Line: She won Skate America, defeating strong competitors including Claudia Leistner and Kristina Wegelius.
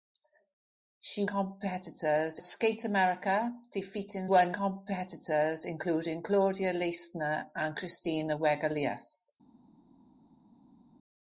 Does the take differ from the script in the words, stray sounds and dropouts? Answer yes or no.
yes